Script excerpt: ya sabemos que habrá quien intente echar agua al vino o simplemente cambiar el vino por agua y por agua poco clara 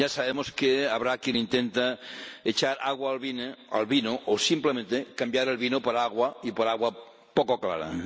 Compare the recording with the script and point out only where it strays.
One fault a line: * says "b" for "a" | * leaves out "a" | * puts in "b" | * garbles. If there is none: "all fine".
all fine